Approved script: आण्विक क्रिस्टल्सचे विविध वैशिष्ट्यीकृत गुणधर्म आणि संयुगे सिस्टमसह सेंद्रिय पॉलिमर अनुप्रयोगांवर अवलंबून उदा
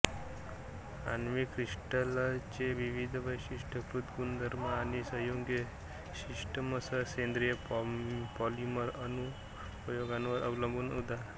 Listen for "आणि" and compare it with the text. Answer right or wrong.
right